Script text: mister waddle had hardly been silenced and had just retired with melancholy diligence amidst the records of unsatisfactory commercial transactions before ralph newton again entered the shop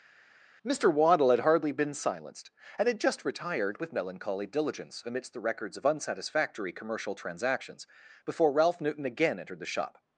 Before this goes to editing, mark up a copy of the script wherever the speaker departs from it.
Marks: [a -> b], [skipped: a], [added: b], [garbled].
mister waddle had hardly been silenced and had just retired with melancholy diligence amidst the records of unsatisfactory commercial transactions before ralph newton again entered the shop